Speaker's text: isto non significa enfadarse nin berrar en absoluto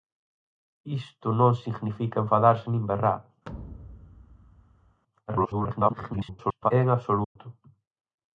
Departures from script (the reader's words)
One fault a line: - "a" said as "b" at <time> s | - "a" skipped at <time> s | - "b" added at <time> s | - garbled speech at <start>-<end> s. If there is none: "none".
- garbled speech at 5.3-6.7 s